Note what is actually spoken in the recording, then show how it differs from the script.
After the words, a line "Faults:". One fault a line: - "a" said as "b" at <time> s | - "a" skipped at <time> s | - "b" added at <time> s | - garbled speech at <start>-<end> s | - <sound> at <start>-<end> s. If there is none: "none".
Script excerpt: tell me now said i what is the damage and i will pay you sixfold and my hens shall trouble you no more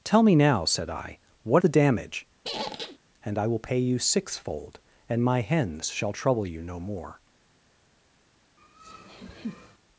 tell me now said i what the damage and i will pay you sixfold and my hens shall trouble you no more
Faults:
- "is" skipped at 1.6 s
- squeak at 2.4-3.0 s
- laugh at 8.6-9.8 s